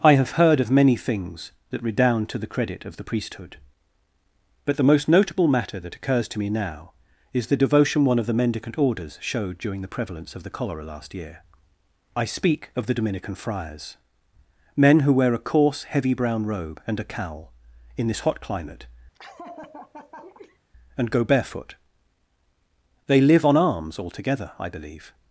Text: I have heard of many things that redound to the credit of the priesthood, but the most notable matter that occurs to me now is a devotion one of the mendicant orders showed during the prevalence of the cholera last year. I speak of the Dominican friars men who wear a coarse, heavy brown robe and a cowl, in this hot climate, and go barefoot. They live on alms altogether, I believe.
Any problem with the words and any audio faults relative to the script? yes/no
yes